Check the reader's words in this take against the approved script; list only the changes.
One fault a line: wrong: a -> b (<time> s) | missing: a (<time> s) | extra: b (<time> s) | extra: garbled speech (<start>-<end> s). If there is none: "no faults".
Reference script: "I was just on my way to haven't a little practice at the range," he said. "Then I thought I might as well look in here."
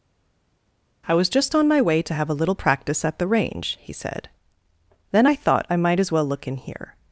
wrong: haven't -> have (2.1 s)